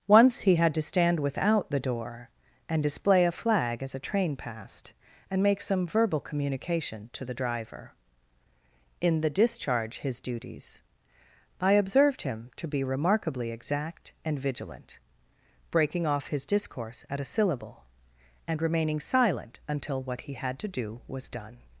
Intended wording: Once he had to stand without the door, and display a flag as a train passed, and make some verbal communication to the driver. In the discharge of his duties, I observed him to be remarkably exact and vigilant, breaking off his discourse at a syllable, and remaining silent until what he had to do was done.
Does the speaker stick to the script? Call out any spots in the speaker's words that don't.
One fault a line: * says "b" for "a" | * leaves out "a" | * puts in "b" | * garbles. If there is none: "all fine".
* leaves out "of"